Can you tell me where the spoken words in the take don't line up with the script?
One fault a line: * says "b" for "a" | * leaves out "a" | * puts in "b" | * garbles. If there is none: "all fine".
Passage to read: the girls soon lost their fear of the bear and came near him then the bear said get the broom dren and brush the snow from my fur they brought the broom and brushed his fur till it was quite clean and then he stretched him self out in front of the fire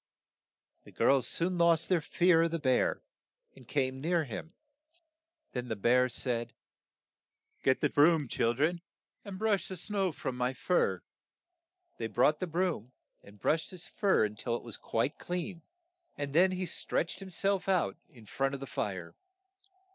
* puts in "chil"